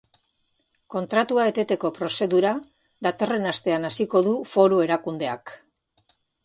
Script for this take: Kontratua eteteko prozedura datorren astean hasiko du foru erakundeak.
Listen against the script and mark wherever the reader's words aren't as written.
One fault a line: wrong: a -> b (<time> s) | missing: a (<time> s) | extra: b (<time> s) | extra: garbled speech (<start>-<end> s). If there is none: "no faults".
no faults